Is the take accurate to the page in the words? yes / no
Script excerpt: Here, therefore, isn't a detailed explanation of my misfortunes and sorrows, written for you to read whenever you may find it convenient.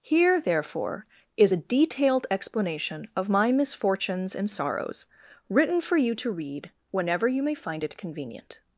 no